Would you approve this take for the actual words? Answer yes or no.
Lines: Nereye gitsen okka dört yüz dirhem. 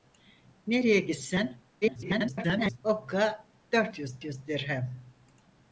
no